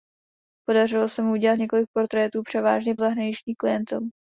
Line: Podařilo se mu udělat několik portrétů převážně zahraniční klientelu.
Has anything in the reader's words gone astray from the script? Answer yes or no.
no